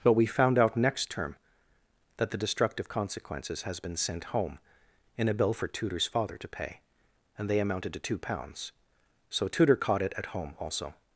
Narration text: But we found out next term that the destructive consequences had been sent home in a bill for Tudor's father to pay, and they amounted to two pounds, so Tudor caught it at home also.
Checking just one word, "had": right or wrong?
wrong